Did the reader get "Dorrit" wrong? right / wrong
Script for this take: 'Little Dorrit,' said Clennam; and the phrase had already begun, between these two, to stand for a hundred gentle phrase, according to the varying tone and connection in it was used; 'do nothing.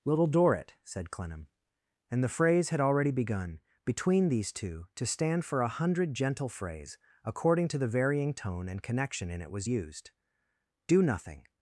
right